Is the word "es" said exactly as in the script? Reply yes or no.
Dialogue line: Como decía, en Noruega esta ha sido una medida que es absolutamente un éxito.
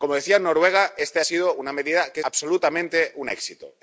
no